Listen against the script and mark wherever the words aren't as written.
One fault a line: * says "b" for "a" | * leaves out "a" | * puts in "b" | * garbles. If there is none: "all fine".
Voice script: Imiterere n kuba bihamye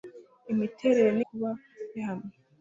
all fine